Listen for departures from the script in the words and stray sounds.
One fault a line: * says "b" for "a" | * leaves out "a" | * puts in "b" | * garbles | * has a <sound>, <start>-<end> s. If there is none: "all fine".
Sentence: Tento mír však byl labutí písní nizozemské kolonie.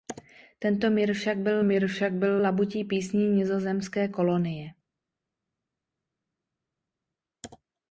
* puts in "mír však byl"